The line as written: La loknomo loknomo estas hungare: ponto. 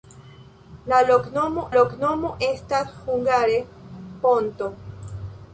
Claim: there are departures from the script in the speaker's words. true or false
false